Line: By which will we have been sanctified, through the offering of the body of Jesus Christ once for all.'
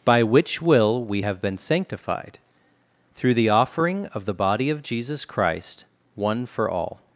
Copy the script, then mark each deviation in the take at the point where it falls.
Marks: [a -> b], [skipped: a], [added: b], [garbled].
By which will we have been sanctified, through the offering of the body of Jesus Christ [once -> one] for all.'